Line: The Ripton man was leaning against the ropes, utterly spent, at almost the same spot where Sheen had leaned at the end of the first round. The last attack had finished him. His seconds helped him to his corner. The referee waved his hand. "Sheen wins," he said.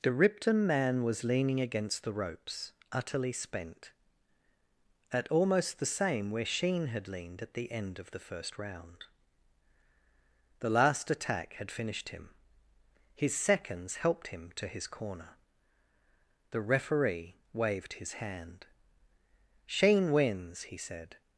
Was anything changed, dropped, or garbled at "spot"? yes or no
yes